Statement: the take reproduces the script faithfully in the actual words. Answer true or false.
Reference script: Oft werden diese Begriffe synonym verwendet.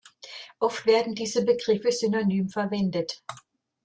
true